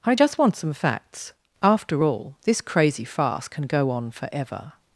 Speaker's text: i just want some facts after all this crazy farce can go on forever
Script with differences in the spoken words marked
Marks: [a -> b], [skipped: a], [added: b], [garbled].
i just want some facts after all this crazy farce can go on forever